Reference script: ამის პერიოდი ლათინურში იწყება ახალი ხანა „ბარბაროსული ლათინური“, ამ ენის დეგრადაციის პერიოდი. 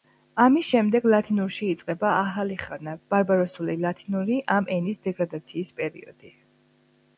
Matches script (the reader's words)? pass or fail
fail